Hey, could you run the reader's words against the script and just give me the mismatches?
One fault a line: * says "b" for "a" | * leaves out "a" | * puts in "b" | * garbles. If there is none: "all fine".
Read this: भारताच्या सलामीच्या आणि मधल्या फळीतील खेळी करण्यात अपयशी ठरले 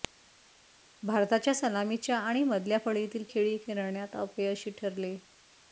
all fine